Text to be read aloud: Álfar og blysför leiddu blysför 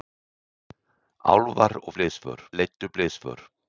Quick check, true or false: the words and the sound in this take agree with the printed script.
true